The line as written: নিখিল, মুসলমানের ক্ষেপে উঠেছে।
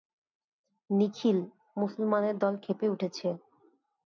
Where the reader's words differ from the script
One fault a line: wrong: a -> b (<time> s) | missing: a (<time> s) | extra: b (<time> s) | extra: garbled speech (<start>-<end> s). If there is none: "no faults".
extra: দল (2.4 s)